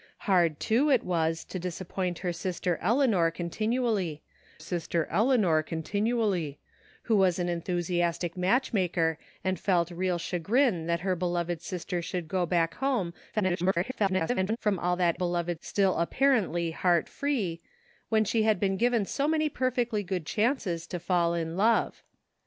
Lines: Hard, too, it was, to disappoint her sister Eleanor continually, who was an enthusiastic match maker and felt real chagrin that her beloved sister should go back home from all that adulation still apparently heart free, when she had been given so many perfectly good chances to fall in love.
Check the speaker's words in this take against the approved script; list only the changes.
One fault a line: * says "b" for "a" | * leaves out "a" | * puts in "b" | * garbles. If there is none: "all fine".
* puts in "sister Eleanor continually"
* garbles
* says "beloved" for "adulation"